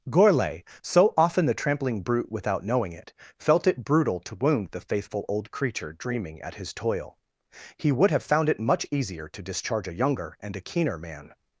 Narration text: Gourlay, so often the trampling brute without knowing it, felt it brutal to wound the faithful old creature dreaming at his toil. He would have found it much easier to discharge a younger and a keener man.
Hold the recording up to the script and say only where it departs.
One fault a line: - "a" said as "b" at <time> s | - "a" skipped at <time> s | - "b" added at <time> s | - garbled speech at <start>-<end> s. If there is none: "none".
none